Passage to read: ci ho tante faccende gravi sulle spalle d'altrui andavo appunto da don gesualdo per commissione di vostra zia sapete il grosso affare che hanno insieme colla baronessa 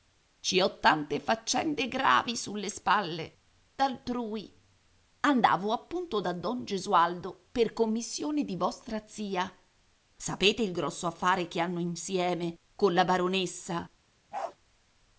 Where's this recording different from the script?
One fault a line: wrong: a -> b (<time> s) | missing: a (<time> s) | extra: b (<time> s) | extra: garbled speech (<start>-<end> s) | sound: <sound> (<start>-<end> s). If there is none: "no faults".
sound: bark (14.3-14.6 s)